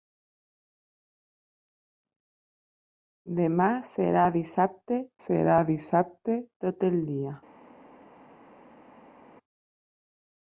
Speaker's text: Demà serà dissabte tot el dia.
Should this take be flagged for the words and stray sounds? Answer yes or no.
yes